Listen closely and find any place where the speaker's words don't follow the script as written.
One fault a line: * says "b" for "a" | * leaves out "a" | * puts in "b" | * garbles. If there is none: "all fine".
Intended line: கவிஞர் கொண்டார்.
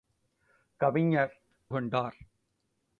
all fine